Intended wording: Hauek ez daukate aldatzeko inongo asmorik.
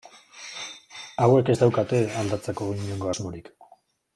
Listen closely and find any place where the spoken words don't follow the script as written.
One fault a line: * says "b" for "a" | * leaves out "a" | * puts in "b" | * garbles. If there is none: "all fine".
all fine